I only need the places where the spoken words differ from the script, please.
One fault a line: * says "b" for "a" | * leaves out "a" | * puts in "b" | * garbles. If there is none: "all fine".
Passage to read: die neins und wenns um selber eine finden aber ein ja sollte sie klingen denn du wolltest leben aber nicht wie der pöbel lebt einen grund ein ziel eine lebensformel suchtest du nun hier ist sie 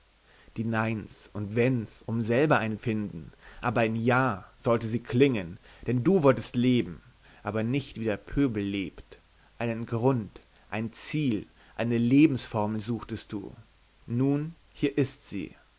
all fine